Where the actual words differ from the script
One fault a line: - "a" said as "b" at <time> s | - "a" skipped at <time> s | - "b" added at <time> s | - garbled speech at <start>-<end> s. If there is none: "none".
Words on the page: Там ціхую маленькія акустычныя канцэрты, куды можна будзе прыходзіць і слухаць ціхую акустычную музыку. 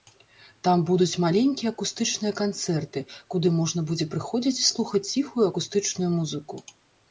- "ціхую" said as "будуць" at 0.9 s